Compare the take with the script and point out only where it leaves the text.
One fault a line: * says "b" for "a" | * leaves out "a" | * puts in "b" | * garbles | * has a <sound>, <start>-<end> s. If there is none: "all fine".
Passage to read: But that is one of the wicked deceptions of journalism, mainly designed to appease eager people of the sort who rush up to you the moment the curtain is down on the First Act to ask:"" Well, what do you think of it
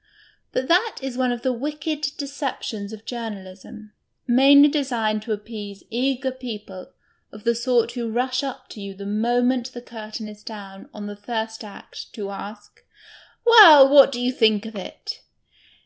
all fine